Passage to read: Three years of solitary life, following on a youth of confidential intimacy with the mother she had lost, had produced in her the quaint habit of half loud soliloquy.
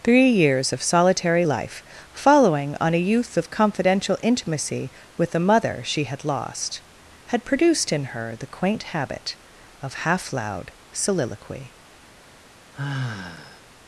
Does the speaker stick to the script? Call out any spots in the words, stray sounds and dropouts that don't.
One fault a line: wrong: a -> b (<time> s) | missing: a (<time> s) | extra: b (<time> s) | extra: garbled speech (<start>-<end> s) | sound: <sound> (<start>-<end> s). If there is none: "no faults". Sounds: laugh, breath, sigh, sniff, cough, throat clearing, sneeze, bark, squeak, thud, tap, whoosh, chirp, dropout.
sound: sigh (12.7-13.6 s)